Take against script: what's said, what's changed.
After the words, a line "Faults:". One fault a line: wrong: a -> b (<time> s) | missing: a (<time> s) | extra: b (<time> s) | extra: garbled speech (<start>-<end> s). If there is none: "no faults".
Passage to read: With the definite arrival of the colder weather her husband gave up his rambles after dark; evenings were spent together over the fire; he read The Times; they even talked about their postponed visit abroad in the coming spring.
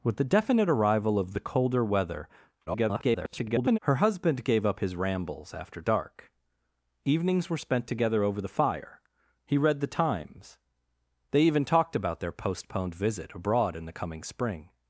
With the definite arrival of the colder weather [garbled] her husband gave up his rambles after dark; evenings were spent together over the fire; he read The Times; they even talked about their postponed visit abroad in the coming spring.
Faults:
extra: garbled speech (2.7-3.8 s)